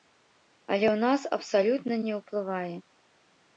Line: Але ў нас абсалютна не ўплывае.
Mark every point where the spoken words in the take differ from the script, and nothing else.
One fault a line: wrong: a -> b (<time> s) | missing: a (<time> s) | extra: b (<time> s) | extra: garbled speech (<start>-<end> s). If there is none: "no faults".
no faults